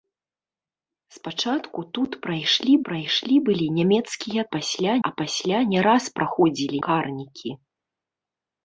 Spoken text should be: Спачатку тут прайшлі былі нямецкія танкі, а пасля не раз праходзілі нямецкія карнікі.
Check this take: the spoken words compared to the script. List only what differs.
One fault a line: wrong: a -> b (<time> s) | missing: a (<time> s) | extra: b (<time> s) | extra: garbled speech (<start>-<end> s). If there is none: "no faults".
extra: прайшлі (2.9 s)
wrong: танкі -> пасля (4.5 s)
missing: нямецкія (6.8 s)